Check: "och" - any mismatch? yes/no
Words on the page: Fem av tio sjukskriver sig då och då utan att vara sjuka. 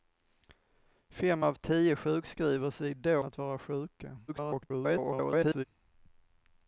yes